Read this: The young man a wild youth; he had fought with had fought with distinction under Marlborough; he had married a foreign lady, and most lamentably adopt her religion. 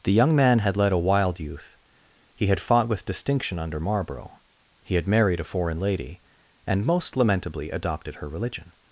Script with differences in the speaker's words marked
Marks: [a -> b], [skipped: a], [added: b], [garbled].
The young man [added: had led] a wild youth; he had fought with [skipped: had fought with] distinction under Marlborough; he had married a foreign lady, and most lamentably [adopt -> adopted] her religion.